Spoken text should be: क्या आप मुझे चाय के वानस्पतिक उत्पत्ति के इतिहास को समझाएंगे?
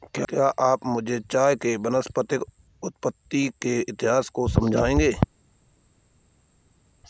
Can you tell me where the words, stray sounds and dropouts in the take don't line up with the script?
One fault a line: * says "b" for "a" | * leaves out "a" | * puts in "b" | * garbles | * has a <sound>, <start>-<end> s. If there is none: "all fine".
all fine